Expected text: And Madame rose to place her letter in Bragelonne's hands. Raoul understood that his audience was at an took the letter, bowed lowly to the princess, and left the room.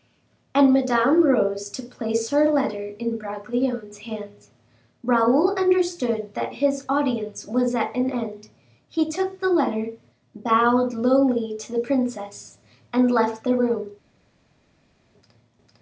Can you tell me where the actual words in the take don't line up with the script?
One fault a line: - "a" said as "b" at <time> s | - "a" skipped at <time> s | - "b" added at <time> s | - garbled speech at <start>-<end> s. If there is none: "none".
- "end he" added at 8.1 s